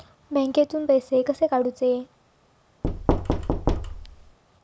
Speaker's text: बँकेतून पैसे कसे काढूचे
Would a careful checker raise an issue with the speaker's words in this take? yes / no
no